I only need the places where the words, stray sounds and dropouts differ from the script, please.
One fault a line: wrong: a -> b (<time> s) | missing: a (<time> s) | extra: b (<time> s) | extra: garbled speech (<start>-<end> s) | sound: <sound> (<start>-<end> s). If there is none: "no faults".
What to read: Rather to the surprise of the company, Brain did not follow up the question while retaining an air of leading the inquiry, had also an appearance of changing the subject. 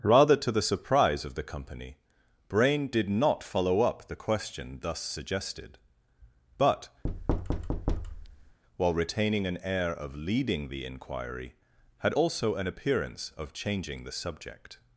extra: thus suggested but (4.8 s)
sound: thud (7.0-8.6 s)